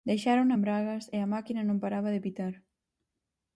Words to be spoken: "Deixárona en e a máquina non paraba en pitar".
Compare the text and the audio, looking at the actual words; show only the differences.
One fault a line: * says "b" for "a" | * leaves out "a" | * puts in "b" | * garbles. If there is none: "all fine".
* puts in "bragas"
* says "de" for "en"